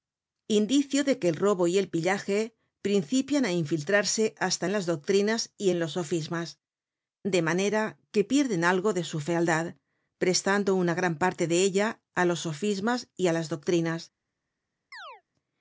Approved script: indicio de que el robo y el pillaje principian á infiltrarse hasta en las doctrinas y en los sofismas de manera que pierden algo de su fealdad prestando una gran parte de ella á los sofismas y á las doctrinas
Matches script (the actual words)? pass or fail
pass